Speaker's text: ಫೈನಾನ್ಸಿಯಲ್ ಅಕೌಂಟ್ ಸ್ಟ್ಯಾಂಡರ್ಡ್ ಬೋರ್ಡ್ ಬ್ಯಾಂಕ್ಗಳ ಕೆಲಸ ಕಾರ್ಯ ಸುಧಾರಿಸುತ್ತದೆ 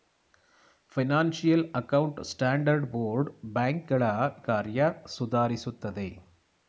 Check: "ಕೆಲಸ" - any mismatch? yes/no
yes